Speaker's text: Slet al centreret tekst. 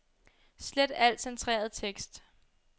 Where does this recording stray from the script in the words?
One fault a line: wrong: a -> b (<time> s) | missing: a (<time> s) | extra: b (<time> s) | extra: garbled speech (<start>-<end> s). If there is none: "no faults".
no faults